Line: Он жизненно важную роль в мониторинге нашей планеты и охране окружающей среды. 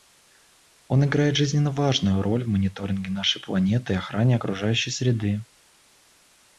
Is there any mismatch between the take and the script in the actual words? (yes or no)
yes